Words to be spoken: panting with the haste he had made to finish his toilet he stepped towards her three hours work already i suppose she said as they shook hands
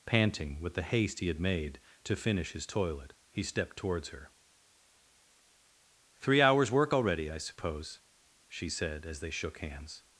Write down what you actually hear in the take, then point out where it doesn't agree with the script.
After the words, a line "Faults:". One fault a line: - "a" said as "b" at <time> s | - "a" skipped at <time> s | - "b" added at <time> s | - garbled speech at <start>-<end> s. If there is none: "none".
panting with the haste he had made to finish his toilet he stepped towards her three hours work already i suppose she said as they shook hands
Faults:
none